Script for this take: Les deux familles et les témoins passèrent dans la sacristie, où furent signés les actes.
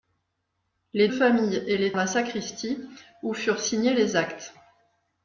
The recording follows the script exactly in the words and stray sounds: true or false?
false